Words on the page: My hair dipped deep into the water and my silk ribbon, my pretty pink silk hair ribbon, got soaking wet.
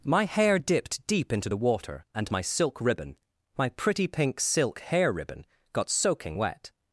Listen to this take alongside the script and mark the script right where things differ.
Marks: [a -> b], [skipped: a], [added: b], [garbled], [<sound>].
My hair dipped deep into the water and my silk ribbon, my pretty pink silk hair ribbon, got soaking wet.